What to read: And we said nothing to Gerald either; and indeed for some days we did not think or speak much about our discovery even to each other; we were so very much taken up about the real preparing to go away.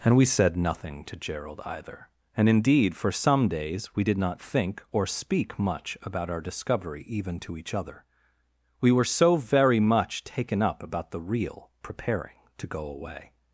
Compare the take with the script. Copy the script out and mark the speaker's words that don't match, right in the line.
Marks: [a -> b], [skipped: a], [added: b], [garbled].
And we said nothing to Gerald either; and indeed for some days we did not think or speak much about our discovery even to each other; we were so very much taken up about the real preparing to go away.